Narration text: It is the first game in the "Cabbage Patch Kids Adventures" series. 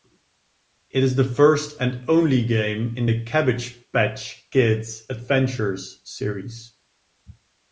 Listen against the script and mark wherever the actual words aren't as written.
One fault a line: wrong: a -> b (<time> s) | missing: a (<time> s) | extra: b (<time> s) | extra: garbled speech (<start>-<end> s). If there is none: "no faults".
extra: and only (1.8 s)